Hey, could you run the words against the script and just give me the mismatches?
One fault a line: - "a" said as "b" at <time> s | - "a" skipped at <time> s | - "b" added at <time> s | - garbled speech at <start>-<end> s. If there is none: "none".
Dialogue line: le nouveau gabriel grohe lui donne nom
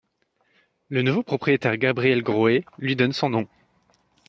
- "propriétaire" added at 1.2 s
- "son" added at 3.1 s